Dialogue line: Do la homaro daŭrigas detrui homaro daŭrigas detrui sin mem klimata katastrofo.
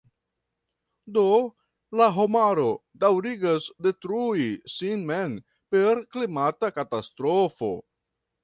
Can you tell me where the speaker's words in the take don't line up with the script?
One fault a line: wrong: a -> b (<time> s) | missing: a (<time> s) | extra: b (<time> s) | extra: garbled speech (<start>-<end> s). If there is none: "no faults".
missing: homaro daŭrigas detrui (4.5 s)
extra: per (5.8 s)